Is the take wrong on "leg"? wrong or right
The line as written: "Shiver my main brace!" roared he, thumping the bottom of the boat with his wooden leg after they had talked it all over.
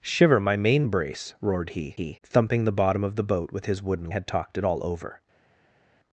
wrong